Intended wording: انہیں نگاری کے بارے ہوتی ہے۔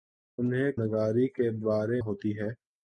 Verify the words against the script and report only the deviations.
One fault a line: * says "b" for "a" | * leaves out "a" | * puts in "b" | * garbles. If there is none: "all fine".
all fine